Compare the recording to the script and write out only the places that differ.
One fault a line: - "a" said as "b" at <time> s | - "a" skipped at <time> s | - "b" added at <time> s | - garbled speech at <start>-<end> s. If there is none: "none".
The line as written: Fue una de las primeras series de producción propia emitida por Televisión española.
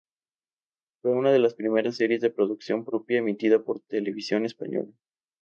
none